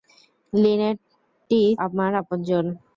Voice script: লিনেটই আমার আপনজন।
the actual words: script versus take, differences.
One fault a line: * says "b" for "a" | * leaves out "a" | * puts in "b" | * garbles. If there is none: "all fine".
all fine